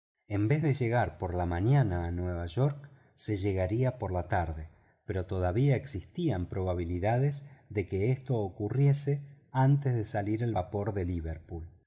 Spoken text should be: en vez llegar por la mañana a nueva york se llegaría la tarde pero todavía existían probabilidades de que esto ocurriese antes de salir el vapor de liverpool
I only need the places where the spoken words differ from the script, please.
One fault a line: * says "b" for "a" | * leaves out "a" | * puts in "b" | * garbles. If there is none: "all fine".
* puts in "de"
* puts in "por"